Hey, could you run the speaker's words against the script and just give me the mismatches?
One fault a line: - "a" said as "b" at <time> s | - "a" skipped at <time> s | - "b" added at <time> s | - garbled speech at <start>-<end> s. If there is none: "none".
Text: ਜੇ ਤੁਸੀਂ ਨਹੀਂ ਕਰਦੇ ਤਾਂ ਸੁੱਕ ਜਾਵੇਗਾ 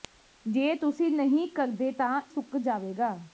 none